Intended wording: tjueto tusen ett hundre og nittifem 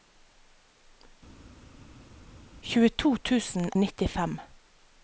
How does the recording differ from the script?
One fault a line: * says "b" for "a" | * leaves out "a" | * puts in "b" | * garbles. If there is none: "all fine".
* leaves out "ett hundre"